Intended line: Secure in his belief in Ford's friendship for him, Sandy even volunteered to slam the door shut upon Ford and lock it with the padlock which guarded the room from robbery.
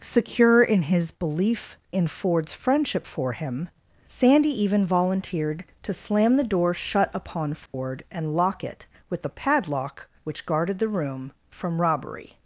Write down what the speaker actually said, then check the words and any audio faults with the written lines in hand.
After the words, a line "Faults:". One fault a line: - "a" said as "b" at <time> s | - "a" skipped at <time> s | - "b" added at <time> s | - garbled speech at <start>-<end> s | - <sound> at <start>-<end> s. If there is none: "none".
Secure in his belief in Ford's friendship for him, Sandy even volunteered to slam the door shut upon Ford and lock it with the padlock which guarded the room from robbery.
Faults:
- dropout at 7.7-7.7 s